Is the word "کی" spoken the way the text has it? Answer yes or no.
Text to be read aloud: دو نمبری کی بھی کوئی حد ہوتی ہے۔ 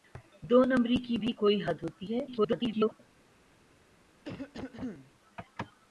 yes